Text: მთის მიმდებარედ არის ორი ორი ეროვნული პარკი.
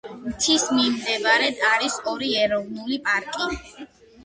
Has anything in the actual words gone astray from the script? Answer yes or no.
yes